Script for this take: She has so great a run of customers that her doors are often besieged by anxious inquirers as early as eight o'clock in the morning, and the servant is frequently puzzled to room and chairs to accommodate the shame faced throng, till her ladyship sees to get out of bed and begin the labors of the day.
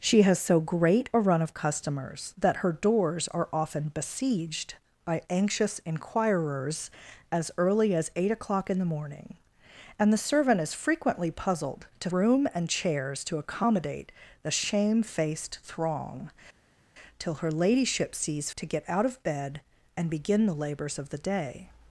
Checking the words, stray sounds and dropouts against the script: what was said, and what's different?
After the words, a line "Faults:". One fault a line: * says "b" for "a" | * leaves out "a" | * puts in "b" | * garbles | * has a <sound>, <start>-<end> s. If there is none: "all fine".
She has so great a run of customers that her doors are often besieged by anxious inquirers as early as eight o'clock in the morning, and the servant is frequently puzzled to room and chairs to accommodate the shame faced throng, till her ladyship sees to get out of bed and begin the labors of the day.
Faults:
all fine